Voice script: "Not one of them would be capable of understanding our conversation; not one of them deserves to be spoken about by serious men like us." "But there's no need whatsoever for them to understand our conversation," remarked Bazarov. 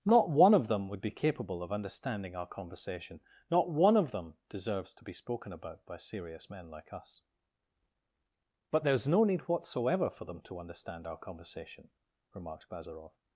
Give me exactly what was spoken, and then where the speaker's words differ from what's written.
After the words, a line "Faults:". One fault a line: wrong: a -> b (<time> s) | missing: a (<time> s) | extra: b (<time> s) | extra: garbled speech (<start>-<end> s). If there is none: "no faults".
"Not one of them would be capable of understanding our conversation; not one of them deserves to be spoken about by serious men like us." "But there's no need whatsoever for them to understand our conversation," remarked Bazarov.
Faults:
no faults